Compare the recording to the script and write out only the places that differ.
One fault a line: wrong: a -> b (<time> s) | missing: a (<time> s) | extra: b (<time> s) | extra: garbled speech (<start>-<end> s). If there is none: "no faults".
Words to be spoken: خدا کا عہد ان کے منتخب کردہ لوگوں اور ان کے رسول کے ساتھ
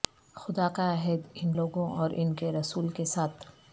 missing: کے منتخب کردہ (1.5 s)